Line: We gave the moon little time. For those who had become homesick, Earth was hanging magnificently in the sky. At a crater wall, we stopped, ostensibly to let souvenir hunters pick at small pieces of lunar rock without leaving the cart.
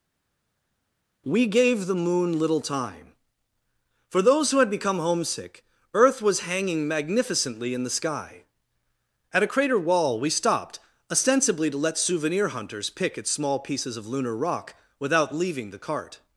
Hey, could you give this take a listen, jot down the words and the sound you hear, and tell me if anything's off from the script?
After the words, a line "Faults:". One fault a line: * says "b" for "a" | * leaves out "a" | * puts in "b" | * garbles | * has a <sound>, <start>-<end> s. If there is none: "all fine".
We gave the moon little time. For those who had become homesick, Earth was hanging magnificently in the sky. At a crater wall, we stopped, ostensibly to let souvenir hunters pick at small pieces of lunar rock without leaving the cart.
Faults:
all fine